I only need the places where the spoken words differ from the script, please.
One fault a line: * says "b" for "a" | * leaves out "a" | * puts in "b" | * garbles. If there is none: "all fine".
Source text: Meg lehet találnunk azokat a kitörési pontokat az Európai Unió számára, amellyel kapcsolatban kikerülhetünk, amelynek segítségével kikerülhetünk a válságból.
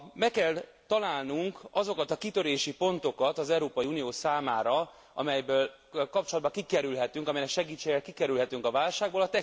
* says "kell" for "lehet"